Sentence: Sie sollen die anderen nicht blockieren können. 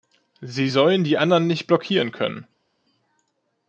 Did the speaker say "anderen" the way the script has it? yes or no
yes